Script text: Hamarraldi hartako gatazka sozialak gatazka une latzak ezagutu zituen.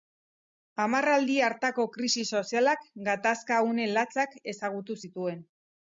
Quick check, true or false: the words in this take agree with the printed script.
false